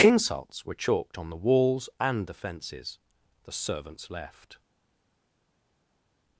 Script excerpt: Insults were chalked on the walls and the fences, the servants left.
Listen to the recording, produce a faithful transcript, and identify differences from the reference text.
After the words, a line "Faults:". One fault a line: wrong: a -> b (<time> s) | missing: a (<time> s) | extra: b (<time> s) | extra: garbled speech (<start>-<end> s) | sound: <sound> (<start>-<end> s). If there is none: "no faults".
Insults were chalked on the walls and the fences, the servants left.
Faults:
no faults